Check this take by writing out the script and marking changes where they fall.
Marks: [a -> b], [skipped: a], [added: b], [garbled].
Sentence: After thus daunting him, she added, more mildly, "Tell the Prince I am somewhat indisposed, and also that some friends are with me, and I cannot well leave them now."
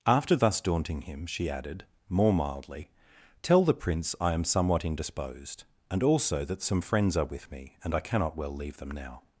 After thus daunting him, she added, more mildly, "Tell the Prince I am somewhat indisposed, and also that some friends are with me, and I cannot well leave them now."